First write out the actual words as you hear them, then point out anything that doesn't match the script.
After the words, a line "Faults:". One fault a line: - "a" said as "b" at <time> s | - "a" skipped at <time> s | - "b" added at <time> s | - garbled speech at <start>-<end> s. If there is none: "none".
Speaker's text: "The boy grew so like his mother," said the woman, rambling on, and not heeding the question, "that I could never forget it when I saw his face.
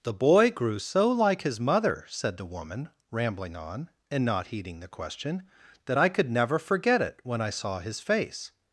"The boy grew so like his mother," said the woman, rambling on, and not heeding the question, "that I could never forget it when I saw his face.
Faults:
none